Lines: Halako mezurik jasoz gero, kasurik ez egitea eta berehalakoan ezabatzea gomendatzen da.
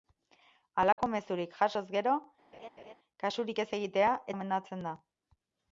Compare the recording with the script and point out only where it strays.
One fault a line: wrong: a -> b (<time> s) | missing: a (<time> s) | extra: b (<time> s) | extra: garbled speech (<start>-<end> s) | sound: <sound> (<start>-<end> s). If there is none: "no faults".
sound: dropout (0.9-1.0 s)
sound: laugh (2.5-2.9 s)
missing: eta berehalakoan ezabatzea (4.1 s)